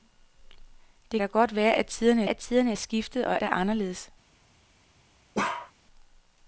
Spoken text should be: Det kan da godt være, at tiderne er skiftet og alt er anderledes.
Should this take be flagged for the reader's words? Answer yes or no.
yes